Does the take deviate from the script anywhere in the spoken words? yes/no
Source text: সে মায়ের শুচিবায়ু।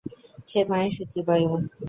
no